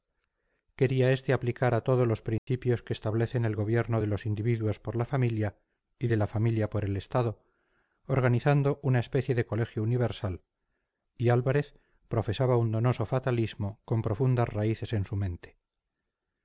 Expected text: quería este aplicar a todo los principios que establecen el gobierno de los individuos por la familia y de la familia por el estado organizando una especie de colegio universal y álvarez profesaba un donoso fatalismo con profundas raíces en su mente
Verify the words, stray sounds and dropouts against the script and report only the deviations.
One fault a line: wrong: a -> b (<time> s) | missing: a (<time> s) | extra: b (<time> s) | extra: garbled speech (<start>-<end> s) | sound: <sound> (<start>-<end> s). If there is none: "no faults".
sound: dropout (2.4-2.5 s)